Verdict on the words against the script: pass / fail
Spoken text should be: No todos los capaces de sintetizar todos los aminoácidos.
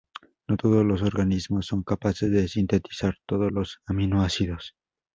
fail